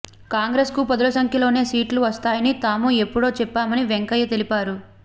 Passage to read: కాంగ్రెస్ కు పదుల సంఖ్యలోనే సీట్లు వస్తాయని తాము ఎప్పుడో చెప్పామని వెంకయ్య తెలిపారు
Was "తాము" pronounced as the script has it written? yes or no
yes